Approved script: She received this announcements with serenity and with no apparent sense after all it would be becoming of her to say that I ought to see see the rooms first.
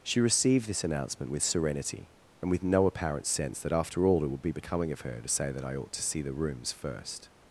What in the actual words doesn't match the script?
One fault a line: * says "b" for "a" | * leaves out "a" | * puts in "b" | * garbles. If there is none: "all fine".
* says "announcement" for "announcements"
* puts in "that"
* leaves out "see"